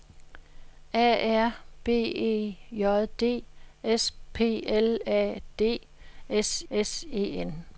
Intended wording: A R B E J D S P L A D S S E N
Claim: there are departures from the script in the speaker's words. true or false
false